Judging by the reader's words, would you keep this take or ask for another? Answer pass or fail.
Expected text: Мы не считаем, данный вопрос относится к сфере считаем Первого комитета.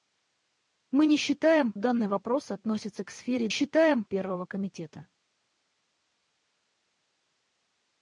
pass